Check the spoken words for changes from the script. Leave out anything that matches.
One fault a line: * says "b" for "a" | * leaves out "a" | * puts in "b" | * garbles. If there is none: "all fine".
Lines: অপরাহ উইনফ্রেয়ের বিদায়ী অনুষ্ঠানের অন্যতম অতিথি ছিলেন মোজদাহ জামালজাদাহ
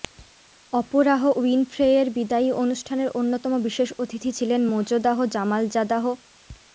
* puts in "বিশেষ"